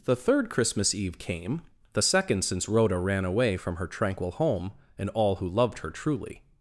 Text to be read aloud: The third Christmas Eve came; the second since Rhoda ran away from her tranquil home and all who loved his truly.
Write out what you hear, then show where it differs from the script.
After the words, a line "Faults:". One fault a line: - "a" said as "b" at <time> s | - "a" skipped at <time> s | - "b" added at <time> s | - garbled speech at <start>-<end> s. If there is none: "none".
The third Christmas Eve came; the second since Rhoda ran away from her tranquil home and all who loved her truly.
Faults:
- "his" said as "her" at 5.8 s